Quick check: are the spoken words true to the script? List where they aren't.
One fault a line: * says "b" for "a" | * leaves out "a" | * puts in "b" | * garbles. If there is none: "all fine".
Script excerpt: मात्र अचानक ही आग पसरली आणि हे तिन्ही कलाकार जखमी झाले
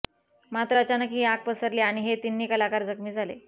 all fine